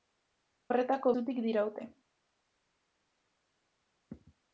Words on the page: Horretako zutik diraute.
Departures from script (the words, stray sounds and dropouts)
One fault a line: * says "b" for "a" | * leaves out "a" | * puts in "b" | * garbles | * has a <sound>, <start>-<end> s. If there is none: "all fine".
all fine